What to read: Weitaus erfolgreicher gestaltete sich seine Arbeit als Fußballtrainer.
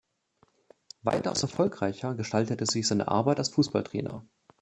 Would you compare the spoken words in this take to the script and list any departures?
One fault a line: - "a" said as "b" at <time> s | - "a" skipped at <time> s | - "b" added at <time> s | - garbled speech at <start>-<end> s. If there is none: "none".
none